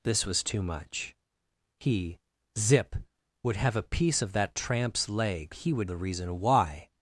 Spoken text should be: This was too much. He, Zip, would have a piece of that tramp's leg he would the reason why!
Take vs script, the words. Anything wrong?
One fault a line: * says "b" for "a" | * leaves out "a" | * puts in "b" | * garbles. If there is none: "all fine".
all fine